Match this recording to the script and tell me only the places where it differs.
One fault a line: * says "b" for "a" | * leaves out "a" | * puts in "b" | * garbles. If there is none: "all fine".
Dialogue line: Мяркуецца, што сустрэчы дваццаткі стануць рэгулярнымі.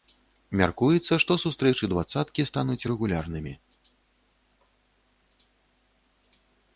all fine